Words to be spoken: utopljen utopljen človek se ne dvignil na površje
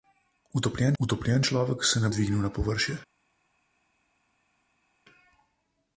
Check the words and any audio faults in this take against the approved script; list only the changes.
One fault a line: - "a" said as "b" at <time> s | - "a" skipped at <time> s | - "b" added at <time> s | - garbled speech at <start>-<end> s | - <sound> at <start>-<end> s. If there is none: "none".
none